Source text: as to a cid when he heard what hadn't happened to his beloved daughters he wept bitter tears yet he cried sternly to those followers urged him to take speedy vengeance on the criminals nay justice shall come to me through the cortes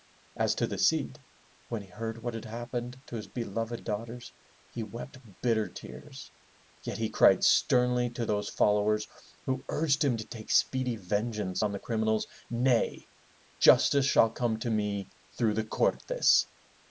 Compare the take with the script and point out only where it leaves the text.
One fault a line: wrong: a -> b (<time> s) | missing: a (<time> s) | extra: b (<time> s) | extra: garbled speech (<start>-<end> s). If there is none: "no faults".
wrong: a -> the (0.7 s)
wrong: hadn't -> had (2.3 s)
extra: who (9.4 s)